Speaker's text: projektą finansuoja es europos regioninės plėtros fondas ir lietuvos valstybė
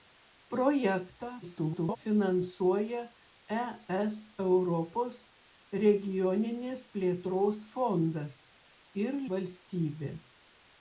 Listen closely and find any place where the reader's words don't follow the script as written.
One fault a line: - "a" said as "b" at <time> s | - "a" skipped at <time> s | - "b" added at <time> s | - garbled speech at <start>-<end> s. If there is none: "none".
- garbled speech at 1.4-2.0 s
- "lietuvos" skipped at 9.2 s